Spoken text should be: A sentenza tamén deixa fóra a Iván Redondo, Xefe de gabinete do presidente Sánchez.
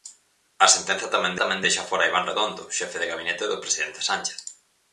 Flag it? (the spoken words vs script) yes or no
yes